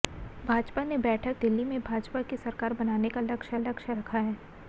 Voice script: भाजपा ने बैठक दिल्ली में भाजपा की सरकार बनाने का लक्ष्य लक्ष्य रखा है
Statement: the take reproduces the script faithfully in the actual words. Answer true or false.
true